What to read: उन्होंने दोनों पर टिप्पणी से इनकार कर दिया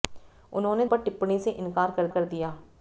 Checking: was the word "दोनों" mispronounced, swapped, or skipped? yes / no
yes